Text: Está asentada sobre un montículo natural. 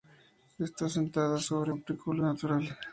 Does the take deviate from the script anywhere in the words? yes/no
yes